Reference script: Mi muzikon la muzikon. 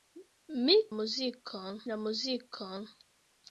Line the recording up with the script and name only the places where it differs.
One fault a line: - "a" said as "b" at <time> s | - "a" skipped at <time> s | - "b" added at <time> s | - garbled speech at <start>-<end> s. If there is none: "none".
none